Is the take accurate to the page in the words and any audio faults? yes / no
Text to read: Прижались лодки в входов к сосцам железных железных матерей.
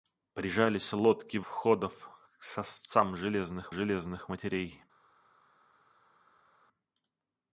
yes